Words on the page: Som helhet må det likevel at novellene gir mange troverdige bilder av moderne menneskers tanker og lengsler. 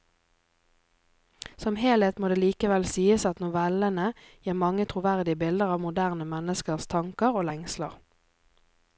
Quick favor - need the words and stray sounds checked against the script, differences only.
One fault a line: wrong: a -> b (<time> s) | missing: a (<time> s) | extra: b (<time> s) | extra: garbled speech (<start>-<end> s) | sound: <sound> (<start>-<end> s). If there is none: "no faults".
extra: sies (2.9 s)